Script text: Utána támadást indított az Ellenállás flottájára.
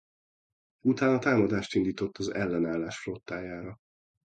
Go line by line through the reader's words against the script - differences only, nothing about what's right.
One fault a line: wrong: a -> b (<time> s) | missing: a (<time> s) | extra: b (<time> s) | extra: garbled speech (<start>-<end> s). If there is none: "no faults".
no faults